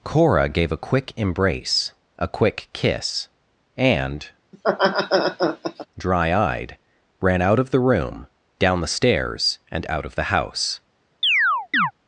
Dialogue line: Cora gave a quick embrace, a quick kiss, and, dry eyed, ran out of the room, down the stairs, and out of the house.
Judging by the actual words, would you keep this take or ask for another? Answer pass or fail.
pass